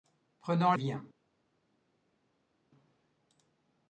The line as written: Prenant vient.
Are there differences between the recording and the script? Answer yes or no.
no